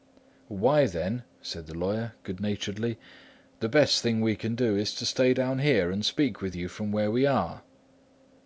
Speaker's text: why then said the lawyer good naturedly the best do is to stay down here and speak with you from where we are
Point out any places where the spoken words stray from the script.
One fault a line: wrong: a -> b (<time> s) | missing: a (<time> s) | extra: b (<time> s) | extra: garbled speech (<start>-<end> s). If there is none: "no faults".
extra: thing we can (4.0 s)